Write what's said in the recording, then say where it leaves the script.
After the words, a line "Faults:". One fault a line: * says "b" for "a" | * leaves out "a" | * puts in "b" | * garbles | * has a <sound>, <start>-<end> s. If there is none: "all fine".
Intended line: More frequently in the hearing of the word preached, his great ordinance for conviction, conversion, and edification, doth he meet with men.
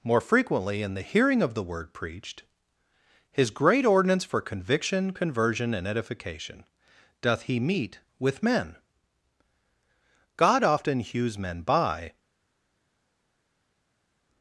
More frequently in the hearing of the word preached, his great ordinance for conviction, conversion, and edification, doth he meet with men. God often hews men by
Faults:
* puts in "God often hews men by"